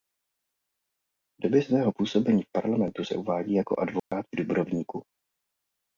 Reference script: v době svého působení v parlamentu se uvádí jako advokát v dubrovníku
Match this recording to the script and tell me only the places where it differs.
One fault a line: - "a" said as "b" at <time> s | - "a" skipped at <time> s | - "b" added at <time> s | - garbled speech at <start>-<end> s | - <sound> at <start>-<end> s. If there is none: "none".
- dropout at 4.0-4.1 s